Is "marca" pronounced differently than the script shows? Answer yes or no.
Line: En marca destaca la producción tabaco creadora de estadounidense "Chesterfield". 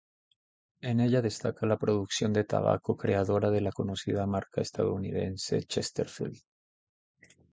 yes